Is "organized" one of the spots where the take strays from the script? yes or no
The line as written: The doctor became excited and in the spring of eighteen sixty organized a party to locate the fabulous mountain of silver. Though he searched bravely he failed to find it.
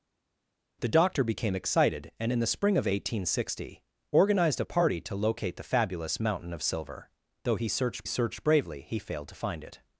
no